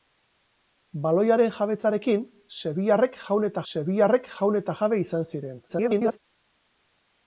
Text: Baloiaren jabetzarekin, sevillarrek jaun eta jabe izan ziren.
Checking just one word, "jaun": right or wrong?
right